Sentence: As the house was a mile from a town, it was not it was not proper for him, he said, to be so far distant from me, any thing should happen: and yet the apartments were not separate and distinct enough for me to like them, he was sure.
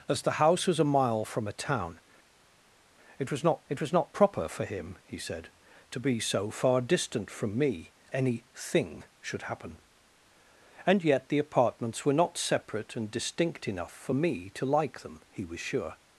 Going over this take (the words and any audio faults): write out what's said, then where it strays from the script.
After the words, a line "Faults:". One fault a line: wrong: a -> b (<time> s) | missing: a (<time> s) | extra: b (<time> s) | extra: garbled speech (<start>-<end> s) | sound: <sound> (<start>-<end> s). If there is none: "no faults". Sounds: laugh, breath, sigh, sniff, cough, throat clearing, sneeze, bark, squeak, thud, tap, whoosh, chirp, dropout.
As the house was a mile from a town, it was not it was not proper for him, he said, to be so far distant from me, any thing should happen: and yet the apartments were not separate and distinct enough for me to like them, he was sure.
Faults:
no faults